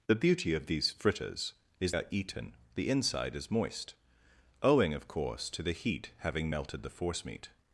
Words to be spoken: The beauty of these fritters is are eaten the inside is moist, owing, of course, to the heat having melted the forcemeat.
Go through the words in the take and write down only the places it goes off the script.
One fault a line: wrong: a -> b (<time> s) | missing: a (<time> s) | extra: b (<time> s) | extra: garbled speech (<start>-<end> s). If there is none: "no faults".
no faults